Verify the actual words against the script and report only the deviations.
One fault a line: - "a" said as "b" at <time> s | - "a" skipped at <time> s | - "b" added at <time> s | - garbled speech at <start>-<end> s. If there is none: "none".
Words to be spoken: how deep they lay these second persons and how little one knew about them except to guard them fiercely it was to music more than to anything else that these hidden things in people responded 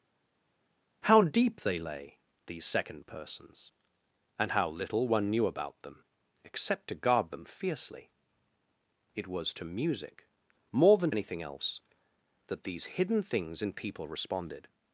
- "to" skipped at 11.1 s